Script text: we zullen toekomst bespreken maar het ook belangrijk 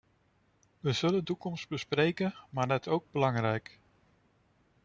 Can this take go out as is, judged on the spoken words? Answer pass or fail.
pass